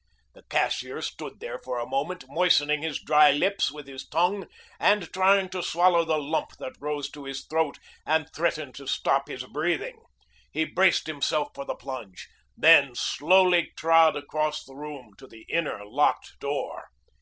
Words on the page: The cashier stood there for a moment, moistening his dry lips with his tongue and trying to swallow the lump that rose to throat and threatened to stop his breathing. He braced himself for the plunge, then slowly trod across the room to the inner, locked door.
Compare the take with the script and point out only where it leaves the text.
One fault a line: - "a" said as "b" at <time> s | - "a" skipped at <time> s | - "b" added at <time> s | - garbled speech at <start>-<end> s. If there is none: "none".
- "his" added at 7.2 s